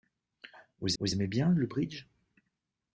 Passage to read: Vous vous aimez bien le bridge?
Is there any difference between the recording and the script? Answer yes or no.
no